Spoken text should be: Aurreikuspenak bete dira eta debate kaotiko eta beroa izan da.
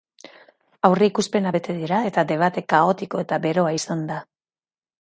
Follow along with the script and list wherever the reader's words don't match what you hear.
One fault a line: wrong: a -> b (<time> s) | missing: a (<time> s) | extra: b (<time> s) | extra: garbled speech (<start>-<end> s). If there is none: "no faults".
no faults